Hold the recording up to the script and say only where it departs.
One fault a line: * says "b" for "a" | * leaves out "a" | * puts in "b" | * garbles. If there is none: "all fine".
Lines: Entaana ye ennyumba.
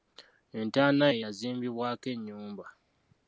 * puts in "yazimbibwako"